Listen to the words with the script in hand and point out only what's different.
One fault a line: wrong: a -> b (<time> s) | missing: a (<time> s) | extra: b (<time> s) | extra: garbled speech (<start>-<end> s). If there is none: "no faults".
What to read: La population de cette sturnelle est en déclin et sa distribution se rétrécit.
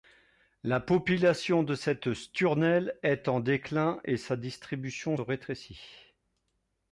missing: se (5.2 s)